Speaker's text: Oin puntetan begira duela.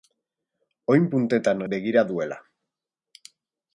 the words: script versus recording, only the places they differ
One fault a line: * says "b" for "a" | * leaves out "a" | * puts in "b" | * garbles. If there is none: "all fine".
all fine